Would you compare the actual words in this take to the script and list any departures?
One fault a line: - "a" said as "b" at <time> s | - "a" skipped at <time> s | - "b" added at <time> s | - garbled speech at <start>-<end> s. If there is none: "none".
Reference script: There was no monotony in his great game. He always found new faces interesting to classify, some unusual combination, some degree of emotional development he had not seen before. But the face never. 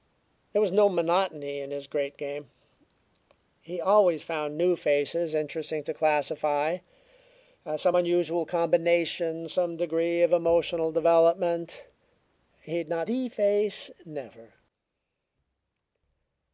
- "seen before But" skipped at 13.1 s